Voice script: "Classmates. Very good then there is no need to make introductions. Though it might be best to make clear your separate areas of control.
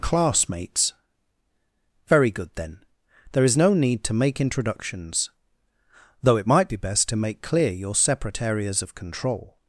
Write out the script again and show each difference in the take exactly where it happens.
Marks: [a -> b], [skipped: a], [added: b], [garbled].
"Classmates. Very good then there is no need to make introductions. Though it might be best to make clear your separate areas of control.